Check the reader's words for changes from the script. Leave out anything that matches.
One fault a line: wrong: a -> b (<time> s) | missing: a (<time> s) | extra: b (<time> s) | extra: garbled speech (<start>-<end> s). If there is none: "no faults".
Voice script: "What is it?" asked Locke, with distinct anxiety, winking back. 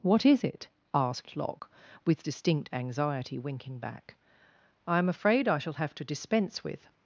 extra: I am afraid I shall have to dispense with (4.9 s)